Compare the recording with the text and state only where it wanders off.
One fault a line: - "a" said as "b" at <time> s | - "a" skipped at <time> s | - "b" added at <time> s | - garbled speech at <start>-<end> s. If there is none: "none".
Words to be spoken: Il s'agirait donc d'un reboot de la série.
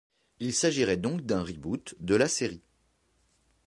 none